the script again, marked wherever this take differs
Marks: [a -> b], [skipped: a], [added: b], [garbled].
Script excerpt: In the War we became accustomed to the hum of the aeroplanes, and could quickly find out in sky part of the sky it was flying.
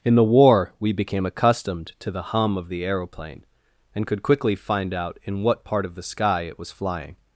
In the War we became accustomed to the hum of the [aeroplanes, -> aeroplane] and could quickly find out in [sky -> what] part of the sky it was flying.